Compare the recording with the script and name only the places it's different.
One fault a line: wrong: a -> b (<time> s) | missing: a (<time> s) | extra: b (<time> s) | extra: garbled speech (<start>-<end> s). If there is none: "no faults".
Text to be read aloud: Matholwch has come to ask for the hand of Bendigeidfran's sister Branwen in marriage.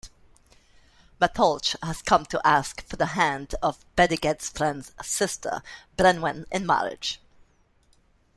no faults